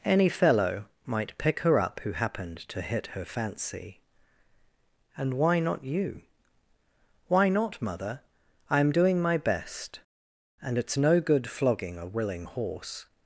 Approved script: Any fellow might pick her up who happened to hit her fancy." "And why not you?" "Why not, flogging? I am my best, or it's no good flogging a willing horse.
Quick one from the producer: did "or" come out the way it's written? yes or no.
no